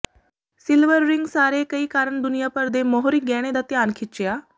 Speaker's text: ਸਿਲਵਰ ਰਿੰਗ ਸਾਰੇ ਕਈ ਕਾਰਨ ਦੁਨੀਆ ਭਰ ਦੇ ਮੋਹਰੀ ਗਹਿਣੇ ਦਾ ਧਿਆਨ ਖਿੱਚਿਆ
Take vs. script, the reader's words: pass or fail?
pass